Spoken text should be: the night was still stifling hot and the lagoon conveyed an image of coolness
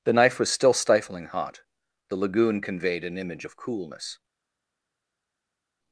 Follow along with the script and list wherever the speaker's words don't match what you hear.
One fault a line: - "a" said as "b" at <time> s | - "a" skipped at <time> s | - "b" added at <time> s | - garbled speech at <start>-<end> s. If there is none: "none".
- "night" said as "knife" at 0.1 s
- "and" skipped at 1.6 s